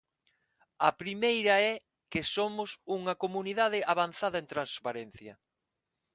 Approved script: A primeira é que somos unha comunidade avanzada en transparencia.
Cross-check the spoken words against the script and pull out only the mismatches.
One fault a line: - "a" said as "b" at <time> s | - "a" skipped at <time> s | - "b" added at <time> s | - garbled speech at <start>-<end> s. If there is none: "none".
none